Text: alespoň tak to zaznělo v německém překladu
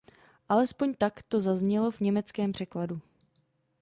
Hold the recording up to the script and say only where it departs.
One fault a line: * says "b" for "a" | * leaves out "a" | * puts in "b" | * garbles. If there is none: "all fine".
all fine